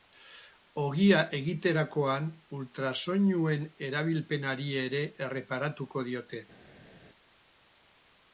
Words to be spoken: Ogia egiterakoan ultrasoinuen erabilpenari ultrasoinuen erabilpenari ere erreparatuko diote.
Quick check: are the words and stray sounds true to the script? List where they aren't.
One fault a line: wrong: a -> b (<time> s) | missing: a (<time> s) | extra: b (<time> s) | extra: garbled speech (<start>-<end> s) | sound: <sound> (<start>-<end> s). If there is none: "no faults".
missing: ultrasoinuen erabilpenari (4.7 s)